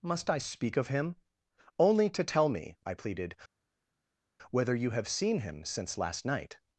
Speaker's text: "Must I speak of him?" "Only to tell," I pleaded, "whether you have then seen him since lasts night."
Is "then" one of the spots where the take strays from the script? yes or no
yes